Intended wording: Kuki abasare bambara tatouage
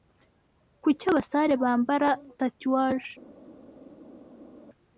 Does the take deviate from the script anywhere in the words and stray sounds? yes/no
no